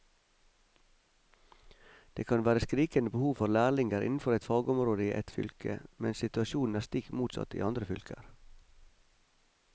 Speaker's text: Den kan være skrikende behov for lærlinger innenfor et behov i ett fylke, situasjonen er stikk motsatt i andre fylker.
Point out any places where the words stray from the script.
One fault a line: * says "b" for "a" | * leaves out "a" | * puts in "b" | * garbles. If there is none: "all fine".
* says "Det" for "Den"
* says "fagområde" for "behov"
* puts in "mens"